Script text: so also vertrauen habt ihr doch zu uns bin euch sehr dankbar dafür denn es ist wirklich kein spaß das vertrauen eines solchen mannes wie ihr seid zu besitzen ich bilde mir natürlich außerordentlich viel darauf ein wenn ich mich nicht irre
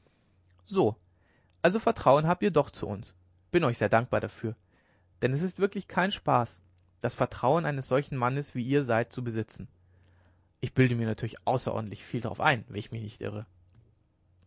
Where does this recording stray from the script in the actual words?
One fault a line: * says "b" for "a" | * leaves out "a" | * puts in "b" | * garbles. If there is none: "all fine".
all fine